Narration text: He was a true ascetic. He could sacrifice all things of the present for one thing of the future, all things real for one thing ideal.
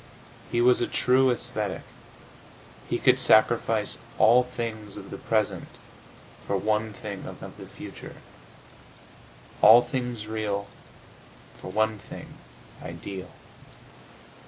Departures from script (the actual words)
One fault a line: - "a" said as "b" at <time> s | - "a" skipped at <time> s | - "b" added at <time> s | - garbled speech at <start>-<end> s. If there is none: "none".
- "of" added at 7.4 s